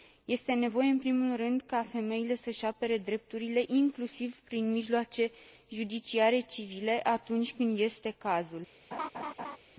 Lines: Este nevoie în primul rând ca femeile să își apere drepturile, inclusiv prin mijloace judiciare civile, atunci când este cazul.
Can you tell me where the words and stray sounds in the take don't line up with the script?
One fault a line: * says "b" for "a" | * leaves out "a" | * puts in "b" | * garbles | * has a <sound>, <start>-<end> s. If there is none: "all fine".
* has a laugh, 8.9-9.6 s